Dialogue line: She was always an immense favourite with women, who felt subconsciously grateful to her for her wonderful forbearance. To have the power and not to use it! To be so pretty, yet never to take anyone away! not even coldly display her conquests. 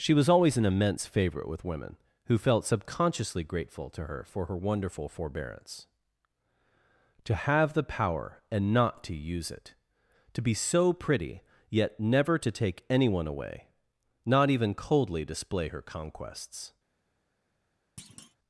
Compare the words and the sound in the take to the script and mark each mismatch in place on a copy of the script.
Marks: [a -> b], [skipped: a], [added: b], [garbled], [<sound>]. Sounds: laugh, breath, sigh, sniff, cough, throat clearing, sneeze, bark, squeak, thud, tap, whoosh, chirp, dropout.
She was always an immense favourite with women, who felt subconsciously grateful to her for her wonderful forbearance. To have the power and not to use it! To be so pretty, yet never to take anyone away! not even coldly display her conquests. [thud]